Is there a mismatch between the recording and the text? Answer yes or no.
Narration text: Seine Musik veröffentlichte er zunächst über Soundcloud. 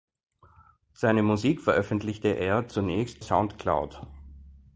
yes